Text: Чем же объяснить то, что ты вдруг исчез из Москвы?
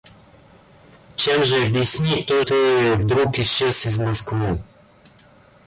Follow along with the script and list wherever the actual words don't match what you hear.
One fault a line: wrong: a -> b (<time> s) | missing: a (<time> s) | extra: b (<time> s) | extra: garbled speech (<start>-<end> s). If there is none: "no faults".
missing: что (2.4 s)